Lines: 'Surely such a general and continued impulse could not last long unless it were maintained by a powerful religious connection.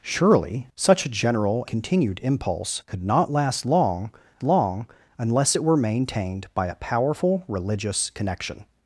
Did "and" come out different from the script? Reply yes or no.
yes